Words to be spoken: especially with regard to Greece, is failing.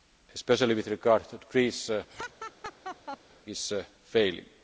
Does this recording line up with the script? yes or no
yes